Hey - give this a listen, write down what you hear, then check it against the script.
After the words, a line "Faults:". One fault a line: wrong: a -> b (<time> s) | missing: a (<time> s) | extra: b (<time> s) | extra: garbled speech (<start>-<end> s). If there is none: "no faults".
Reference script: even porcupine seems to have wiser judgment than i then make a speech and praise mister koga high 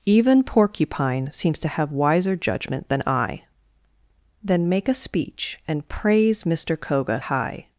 even porcupine seems to have wiser judgment than i then make a speech and praise mister koga high
Faults:
no faults